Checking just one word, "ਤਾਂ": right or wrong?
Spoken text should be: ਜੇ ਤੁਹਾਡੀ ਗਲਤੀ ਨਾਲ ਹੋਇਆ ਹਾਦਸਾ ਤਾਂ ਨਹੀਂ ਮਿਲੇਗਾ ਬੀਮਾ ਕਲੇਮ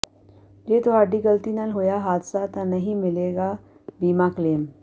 right